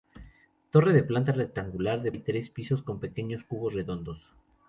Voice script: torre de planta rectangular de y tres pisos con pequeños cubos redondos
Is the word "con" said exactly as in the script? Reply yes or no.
yes